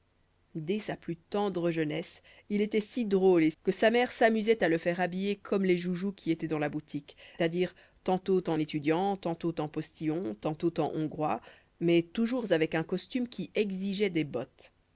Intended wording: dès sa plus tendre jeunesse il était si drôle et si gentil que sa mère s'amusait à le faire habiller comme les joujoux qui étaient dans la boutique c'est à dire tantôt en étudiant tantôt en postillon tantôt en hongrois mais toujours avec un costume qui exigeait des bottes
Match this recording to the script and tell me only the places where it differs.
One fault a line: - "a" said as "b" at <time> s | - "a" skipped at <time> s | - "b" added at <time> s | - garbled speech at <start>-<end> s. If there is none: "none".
- "si gentil" skipped at 3.5 s
- "c'est" skipped at 7.2 s